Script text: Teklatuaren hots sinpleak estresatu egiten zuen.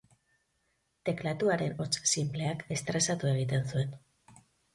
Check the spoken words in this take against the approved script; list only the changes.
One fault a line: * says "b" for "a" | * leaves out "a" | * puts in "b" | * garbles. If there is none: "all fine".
all fine